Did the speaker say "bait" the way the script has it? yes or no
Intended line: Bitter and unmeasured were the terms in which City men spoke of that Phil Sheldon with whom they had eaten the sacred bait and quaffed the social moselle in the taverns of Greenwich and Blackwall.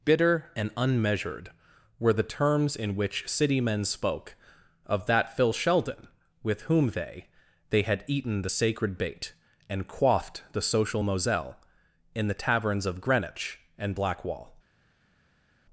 yes